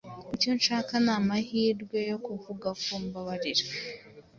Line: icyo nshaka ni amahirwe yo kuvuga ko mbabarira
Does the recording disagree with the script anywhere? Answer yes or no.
no